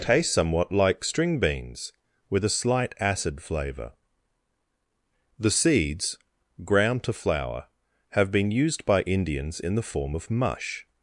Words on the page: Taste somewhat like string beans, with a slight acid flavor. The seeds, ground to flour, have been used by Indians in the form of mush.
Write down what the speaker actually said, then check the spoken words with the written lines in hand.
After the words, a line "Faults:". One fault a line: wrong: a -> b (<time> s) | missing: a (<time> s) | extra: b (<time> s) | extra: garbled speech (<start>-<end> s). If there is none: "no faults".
Taste somewhat like string beans, with a slight acid flavor. The seeds, ground to flour, have been used by Indians in the form of mush.
Faults:
no faults